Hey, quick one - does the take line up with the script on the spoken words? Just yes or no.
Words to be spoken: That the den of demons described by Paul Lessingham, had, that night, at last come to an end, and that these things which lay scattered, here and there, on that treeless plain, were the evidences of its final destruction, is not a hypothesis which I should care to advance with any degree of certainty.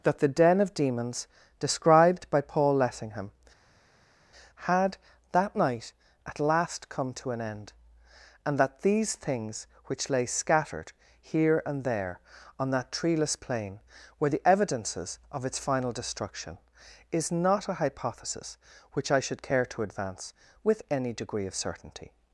yes